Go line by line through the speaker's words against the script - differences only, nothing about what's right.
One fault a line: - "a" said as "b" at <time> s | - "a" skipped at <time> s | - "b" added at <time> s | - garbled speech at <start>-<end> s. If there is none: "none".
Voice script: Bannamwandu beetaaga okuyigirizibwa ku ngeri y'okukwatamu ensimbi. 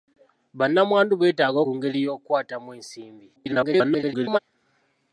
- "okuyigirizibwa" skipped at 1.6 s
- garbled speech at 3.4-4.4 s